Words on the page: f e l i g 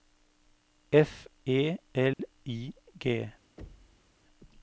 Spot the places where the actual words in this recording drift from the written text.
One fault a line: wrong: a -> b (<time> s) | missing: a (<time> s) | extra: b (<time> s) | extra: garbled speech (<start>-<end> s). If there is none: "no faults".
no faults